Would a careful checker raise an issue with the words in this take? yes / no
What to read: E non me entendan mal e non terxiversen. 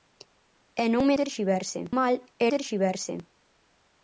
yes